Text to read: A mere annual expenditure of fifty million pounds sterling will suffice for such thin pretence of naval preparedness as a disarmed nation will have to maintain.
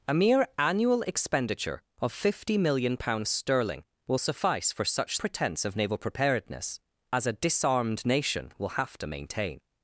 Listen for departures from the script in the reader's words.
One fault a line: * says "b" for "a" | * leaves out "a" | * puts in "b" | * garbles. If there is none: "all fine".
* leaves out "thin"